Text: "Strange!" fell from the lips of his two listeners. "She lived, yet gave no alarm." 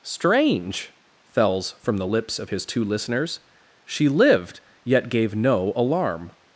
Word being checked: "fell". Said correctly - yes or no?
no